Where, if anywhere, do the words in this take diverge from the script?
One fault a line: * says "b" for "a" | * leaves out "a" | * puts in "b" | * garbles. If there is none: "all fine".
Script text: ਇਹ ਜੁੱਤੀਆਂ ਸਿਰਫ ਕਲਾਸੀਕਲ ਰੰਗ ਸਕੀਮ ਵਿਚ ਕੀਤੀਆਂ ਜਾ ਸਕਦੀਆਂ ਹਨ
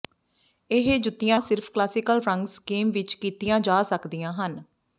all fine